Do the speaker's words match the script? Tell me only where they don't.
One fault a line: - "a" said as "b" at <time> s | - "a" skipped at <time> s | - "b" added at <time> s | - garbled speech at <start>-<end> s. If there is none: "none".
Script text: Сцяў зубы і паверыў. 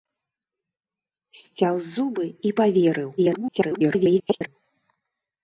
- garbled speech at 3.2-4.5 s